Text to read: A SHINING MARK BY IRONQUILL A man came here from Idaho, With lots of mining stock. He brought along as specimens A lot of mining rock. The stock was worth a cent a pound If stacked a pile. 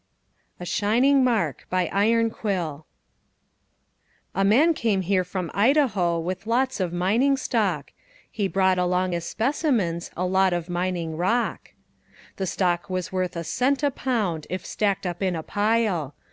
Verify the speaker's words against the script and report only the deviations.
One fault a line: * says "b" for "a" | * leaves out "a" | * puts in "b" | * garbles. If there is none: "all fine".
* puts in "up in"